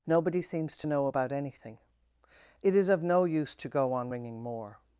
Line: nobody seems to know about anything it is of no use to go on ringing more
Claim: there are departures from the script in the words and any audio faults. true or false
false